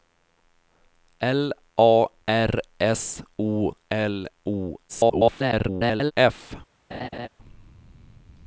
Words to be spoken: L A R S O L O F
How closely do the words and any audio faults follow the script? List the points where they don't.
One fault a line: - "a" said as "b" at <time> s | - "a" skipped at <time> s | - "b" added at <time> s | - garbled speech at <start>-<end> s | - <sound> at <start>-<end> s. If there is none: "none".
- garbled speech at 4.9-6.1 s
- laugh at 6.9-7.3 s